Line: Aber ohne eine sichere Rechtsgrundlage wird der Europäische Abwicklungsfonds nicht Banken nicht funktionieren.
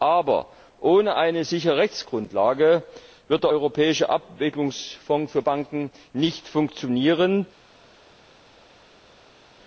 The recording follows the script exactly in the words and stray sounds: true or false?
false